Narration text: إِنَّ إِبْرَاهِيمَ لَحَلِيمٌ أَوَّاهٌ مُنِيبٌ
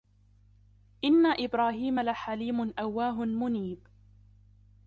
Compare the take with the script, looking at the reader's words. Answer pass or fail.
pass